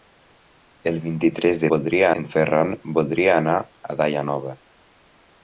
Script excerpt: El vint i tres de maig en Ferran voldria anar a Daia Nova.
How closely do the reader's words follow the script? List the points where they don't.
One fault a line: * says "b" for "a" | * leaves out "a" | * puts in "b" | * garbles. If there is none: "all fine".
* says "voldria" for "maig"